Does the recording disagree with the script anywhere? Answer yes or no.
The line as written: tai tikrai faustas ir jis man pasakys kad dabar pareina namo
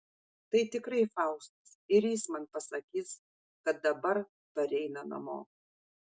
no